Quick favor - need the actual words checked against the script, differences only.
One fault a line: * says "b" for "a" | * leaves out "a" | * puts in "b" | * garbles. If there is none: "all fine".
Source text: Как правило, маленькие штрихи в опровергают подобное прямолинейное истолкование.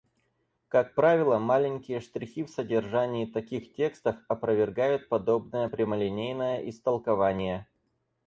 * puts in "содержании таких текстов"